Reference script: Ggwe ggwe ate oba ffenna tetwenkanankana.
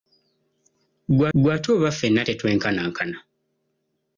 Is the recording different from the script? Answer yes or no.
no